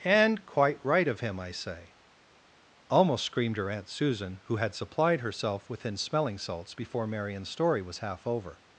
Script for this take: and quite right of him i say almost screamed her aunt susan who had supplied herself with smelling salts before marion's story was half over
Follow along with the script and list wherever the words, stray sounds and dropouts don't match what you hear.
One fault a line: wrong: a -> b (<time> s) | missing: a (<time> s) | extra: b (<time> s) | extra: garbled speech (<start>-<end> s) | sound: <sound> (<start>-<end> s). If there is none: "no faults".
wrong: with -> within (5.7 s)